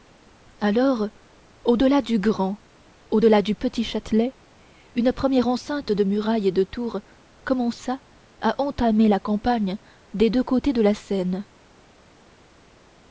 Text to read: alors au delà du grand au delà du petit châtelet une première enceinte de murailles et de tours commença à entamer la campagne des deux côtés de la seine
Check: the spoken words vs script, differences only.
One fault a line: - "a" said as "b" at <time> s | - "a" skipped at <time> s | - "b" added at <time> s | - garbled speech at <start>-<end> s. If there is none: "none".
none